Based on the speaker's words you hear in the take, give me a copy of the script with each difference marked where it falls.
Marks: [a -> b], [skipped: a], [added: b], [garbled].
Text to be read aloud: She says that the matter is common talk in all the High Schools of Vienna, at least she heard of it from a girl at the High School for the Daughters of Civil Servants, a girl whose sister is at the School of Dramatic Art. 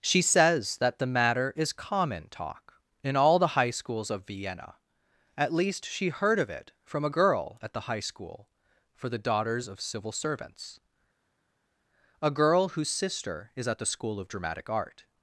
She says that the matter is common talk in all the High Schools of Vienna, at least she heard of it from a girl at the High School for the Daughters of Civil Servants, a girl whose sister is at the School of Dramatic Art.